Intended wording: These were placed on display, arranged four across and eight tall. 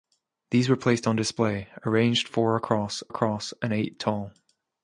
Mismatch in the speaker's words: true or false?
true